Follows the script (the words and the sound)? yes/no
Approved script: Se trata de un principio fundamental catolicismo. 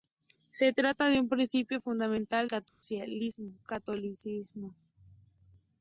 no